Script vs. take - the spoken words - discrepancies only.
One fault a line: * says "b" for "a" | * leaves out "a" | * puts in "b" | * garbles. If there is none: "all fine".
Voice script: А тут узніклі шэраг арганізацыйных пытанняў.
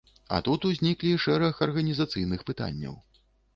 all fine